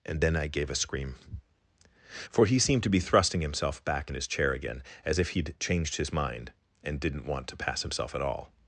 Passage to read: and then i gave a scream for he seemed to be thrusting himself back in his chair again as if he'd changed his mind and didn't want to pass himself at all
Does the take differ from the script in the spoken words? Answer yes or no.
no